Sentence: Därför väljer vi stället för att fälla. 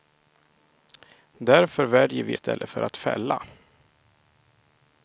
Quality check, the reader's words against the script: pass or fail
pass